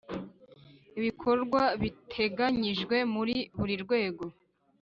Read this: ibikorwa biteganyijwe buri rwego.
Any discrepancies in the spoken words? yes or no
yes